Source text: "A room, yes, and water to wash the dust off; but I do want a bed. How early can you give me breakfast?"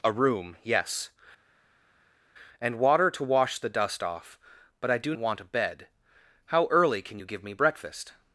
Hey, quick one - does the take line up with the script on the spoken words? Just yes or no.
yes